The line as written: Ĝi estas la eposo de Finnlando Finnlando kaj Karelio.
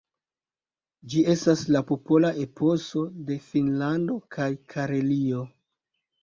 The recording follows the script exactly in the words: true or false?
false